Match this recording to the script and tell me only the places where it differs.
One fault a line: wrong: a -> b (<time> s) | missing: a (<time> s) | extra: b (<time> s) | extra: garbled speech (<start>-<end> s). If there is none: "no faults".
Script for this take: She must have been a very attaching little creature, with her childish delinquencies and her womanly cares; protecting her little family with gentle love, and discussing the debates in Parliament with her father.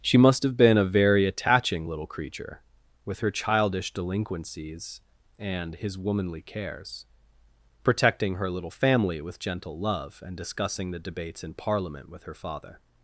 wrong: her -> his (5.8 s)